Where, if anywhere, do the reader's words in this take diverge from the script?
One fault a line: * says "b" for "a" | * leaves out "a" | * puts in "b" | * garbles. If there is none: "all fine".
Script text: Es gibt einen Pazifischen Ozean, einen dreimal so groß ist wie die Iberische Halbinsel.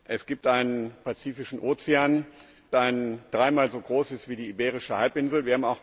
all fine